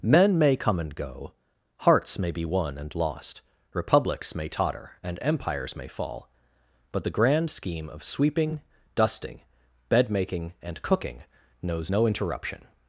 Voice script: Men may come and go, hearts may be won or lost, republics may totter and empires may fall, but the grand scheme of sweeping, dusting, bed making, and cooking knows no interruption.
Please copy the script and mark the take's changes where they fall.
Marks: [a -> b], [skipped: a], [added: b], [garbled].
Men may come and go, hearts may be won [or -> and] lost, republics may totter and empires may fall, but the grand scheme of sweeping, dusting, bed making, and cooking knows no interruption.